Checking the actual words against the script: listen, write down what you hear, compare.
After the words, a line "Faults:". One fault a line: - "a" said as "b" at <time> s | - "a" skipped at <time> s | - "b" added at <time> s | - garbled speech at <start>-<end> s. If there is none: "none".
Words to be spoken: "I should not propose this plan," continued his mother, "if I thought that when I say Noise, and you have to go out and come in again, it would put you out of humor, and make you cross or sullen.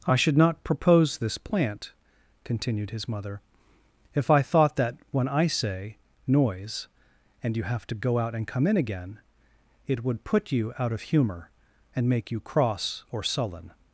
"I should not propose this plant," continued his mother, "if I thought that when I say Noise, and you have to go out and come in again, it would put you out of humor, and make you cross or sullen.
Faults:
- "plan" said as "plant" at 1.4 s